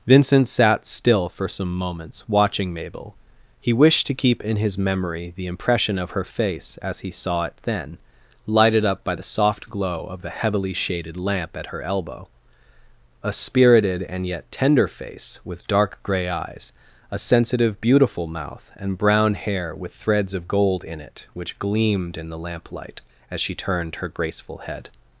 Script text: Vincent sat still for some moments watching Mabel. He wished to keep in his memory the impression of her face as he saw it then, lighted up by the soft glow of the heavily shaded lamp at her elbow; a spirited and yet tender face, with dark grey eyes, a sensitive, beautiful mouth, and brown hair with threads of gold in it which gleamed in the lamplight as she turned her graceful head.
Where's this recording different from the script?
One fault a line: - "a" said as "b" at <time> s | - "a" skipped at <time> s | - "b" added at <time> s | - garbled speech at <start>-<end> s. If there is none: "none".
none